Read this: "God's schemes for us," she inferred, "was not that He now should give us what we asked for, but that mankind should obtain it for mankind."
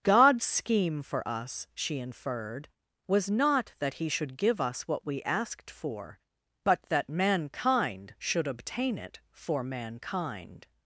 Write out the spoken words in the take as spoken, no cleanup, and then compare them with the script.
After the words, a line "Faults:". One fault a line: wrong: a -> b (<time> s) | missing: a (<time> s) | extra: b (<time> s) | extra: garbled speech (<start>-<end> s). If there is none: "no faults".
"God's scheme for us," she inferred, "was not that He should give us what we asked for, but that mankind should obtain it for mankind."
Faults:
wrong: schemes -> scheme (0.4 s)
missing: now (4.1 s)